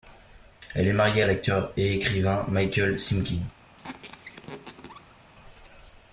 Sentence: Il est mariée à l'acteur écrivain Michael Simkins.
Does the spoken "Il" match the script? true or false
false